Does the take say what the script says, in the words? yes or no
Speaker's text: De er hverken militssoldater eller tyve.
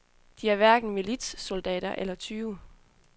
yes